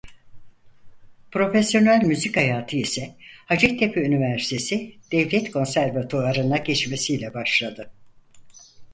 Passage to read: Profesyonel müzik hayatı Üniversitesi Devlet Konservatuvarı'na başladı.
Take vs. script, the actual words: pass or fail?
fail